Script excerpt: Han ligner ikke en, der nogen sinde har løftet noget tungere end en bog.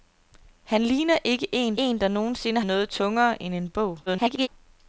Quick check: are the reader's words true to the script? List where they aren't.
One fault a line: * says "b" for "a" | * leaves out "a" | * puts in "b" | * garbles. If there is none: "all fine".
* puts in "en"
* leaves out "har løftet"
* garbles